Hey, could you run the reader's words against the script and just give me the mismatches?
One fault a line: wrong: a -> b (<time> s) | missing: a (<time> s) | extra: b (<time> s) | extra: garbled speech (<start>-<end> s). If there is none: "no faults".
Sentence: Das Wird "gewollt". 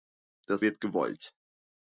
no faults